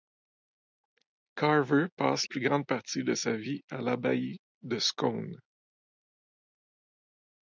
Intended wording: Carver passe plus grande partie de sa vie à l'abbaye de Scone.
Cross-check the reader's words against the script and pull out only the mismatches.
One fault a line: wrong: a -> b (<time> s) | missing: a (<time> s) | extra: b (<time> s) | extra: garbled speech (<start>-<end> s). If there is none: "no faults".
no faults